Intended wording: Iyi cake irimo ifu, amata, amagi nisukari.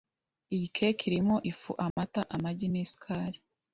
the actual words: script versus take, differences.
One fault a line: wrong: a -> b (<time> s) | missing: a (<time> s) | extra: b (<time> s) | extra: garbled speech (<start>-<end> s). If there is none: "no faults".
no faults